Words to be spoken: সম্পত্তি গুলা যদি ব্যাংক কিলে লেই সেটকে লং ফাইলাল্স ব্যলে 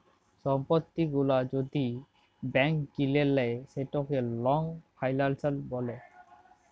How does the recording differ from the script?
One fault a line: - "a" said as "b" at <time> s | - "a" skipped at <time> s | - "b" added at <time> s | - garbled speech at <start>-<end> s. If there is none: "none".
none